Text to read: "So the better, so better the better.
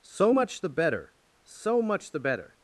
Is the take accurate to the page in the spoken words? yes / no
no